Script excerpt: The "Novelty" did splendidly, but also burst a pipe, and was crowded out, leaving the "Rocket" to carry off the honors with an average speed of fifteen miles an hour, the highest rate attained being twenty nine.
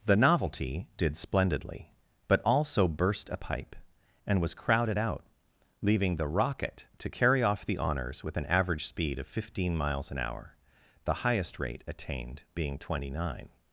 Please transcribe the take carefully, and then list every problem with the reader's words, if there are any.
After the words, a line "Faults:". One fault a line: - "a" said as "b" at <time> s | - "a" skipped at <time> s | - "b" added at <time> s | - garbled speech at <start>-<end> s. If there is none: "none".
The "Novelty" did splendidly, but also burst a pipe, and was crowded out, leaving the "Rocket" to carry off the honors with an average speed of fifteen miles an hour, the highest rate attained being twenty nine.
Faults:
none